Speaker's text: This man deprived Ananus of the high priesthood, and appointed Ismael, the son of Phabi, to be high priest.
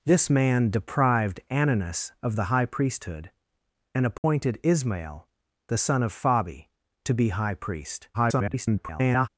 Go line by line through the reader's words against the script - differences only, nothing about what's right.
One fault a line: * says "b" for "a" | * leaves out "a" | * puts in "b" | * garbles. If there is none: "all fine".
* garbles